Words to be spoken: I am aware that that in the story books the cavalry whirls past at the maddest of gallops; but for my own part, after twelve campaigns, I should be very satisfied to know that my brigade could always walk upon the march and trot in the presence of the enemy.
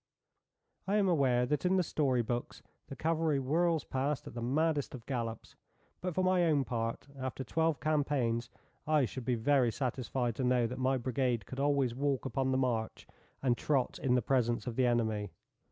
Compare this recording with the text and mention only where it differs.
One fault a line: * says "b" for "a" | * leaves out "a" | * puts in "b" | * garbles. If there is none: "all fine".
* leaves out "that"